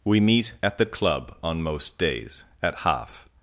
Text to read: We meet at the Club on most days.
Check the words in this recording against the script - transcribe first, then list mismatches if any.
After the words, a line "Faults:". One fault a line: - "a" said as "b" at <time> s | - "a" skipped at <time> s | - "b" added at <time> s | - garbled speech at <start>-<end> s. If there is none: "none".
We meet at the Club on most days. At half
Faults:
- "At half" added at 2.6 s